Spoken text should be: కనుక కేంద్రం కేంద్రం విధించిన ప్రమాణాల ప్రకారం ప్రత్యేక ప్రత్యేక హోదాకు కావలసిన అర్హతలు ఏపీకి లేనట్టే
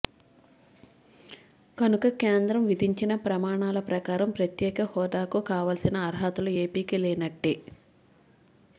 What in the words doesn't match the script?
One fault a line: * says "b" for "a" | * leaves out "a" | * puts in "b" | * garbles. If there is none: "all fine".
* leaves out "కేంద్రం"
* leaves out "ప్రత్యేక"